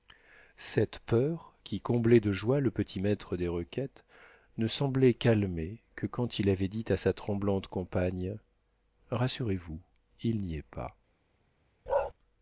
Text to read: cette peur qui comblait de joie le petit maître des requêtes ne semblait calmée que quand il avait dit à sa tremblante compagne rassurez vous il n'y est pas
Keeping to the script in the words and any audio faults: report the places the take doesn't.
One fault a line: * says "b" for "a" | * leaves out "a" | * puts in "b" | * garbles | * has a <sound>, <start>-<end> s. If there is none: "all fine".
* has a bark, 11.9-12.1 s